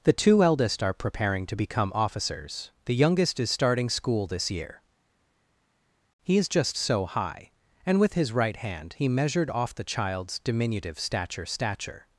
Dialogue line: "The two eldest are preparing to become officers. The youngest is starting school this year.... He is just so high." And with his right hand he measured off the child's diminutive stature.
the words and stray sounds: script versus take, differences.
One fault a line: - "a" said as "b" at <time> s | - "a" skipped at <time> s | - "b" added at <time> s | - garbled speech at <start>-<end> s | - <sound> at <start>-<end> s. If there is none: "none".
- "stature" added at 11.5 s